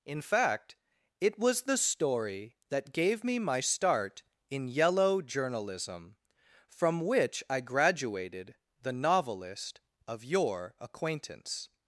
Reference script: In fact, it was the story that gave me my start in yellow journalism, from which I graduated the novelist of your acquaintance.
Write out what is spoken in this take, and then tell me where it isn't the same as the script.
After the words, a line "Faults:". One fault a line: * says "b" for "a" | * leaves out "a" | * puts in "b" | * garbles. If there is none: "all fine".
In fact, it was the story that gave me my start in yellow journalism, from which I graduated the novelist of your acquaintance.
Faults:
all fine